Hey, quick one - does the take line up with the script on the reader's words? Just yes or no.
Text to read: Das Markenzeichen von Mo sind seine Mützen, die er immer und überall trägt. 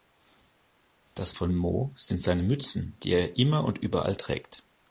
no